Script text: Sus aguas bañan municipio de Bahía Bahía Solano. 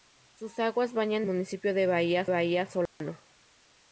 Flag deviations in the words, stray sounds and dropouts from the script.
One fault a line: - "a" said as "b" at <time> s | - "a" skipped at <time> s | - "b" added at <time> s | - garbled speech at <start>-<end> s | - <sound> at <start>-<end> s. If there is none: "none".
- dropout at 2.9-3.0 s